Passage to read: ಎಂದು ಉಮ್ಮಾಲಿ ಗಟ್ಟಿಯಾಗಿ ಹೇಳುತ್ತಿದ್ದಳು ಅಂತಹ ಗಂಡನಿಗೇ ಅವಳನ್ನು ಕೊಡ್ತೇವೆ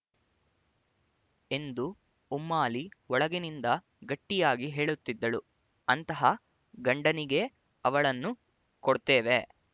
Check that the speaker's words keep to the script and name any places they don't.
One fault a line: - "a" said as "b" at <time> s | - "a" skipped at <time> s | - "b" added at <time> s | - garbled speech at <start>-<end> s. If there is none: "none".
- "ಒಳಗಿನಿಂದ" added at 3.1 s